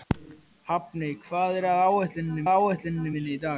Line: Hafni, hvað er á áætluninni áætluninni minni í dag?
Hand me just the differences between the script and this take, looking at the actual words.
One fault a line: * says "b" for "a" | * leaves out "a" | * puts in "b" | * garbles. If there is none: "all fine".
all fine